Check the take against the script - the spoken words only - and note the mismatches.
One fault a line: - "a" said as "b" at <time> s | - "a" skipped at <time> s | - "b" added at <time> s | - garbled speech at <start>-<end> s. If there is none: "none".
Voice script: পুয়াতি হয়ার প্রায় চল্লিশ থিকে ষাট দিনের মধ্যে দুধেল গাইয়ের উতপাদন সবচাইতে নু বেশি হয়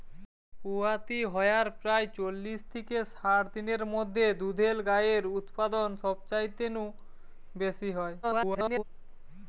- garbled speech at 8.2-8.8 s